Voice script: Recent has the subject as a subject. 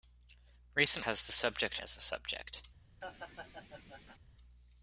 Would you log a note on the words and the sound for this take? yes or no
yes